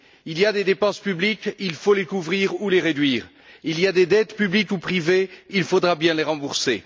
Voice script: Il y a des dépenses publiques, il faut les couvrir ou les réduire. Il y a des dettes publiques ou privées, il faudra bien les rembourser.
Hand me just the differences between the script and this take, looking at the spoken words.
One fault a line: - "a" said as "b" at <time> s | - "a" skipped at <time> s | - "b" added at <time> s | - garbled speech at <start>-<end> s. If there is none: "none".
none